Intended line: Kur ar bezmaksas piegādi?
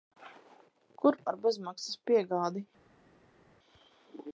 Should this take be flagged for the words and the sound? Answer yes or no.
no